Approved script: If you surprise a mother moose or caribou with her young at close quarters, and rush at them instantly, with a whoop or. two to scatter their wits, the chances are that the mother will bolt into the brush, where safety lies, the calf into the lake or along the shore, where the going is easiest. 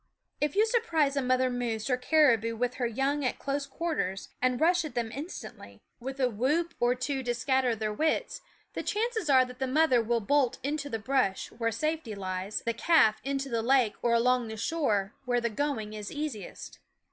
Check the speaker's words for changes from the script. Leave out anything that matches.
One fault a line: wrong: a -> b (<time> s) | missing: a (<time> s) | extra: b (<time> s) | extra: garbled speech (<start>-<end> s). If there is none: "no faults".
no faults